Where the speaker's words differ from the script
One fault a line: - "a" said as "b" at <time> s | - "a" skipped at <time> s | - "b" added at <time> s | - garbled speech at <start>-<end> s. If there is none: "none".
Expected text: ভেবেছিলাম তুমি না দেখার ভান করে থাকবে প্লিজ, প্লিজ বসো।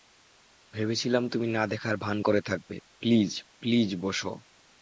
none